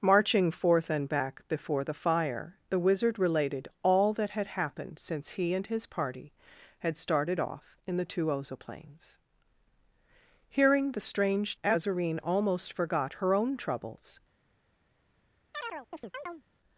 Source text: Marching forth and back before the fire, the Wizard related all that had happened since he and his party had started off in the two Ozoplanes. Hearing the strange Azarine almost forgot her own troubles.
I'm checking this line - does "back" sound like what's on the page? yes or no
yes